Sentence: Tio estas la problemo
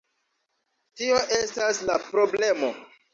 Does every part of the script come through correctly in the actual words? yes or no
yes